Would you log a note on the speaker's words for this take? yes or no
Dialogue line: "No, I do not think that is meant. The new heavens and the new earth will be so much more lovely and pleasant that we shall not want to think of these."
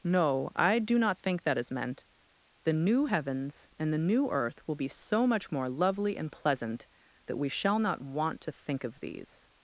no